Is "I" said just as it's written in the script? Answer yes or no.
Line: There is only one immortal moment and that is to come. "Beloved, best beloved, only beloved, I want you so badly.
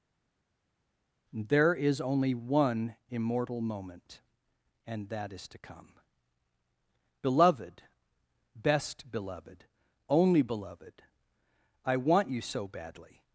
yes